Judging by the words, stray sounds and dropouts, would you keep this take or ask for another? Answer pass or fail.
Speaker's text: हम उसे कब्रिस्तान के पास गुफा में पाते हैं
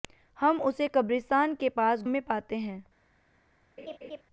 fail